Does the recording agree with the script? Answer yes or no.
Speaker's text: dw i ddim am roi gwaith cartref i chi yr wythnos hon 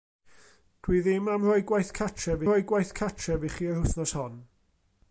no